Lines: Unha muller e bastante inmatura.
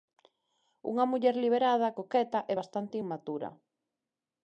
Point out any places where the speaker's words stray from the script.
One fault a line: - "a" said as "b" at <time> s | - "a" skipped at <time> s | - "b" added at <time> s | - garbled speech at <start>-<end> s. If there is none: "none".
- "liberada coqueta" added at 1.4 s